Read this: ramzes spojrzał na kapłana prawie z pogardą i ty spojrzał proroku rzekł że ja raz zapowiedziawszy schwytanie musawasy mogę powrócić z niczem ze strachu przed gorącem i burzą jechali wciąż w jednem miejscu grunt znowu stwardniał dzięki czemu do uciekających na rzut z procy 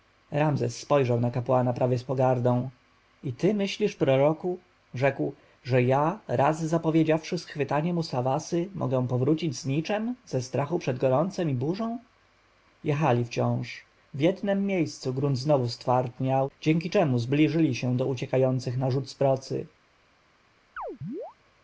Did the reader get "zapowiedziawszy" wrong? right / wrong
right